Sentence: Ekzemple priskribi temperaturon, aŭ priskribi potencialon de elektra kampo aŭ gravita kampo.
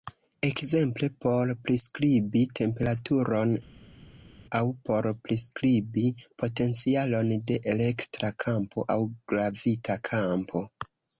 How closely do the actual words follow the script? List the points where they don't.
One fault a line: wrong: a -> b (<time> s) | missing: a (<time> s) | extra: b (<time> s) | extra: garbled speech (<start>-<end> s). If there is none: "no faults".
extra: por (1.2 s)
extra: por (4.9 s)